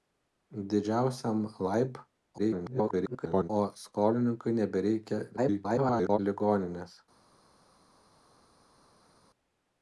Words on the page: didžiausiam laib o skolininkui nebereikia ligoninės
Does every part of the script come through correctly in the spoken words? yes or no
no